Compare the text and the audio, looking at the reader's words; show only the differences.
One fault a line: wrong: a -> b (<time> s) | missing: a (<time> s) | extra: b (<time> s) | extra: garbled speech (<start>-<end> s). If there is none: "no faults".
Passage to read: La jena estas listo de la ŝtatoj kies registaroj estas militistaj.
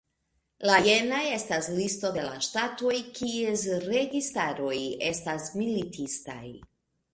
no faults